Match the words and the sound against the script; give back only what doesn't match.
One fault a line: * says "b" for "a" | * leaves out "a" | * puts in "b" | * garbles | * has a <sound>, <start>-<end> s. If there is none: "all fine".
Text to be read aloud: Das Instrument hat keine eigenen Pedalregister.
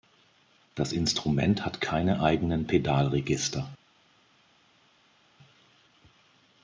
all fine